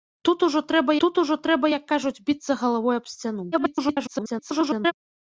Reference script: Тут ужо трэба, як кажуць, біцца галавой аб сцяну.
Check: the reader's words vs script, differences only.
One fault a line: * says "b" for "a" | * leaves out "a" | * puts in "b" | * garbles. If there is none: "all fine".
* puts in "тут ужо трэба"
* garbles